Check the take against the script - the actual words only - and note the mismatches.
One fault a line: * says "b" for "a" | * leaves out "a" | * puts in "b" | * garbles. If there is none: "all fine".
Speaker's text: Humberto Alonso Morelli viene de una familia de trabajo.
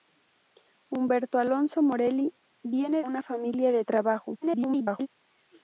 * leaves out "de"
* garbles